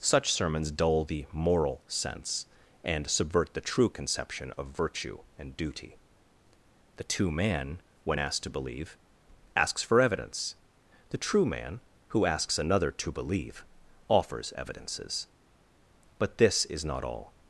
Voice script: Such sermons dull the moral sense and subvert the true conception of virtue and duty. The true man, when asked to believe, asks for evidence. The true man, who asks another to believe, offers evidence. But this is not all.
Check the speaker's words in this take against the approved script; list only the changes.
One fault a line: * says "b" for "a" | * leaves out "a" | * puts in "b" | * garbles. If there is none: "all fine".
* says "two" for "true"
* says "evidences" for "evidence"